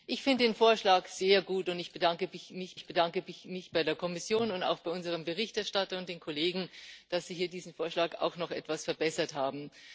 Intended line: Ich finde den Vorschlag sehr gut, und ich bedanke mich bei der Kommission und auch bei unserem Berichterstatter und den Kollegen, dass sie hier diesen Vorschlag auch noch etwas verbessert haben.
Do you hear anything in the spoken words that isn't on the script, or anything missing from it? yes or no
yes